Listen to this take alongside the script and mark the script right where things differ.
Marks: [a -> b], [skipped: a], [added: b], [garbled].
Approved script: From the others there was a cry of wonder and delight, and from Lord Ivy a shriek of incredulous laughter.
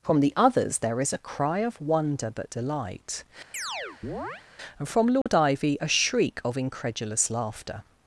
From the others there [was -> is] a cry of wonder [and -> but] delight, and from Lord Ivy a shriek of incredulous laughter.